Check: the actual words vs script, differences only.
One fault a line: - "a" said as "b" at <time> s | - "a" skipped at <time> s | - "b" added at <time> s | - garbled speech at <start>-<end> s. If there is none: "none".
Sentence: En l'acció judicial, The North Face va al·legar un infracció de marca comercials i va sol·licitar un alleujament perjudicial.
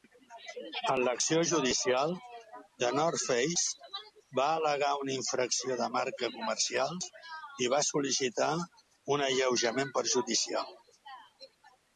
- "un" said as "una" at 5.0 s